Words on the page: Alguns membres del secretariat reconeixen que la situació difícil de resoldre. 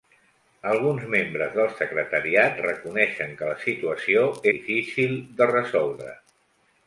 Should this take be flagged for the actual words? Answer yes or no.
no